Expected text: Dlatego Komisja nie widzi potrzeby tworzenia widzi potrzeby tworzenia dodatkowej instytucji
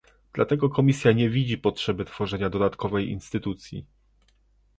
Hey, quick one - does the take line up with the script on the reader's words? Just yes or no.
no